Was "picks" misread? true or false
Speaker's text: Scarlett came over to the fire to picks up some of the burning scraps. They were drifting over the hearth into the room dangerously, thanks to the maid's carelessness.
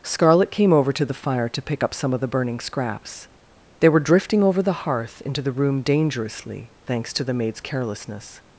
true